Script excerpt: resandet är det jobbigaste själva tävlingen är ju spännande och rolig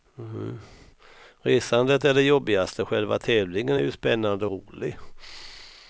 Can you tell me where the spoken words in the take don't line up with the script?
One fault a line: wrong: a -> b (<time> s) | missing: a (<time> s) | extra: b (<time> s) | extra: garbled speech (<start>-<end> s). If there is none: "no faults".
missing: och (4.5 s)